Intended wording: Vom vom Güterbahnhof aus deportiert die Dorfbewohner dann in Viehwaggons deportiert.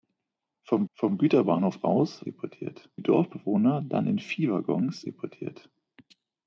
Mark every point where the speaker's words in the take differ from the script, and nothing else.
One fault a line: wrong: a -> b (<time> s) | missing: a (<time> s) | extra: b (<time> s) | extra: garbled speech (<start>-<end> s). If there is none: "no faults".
no faults